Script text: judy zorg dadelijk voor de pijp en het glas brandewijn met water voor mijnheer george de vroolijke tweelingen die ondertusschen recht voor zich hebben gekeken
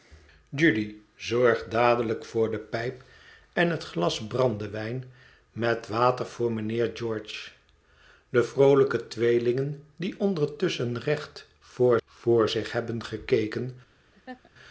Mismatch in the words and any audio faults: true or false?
true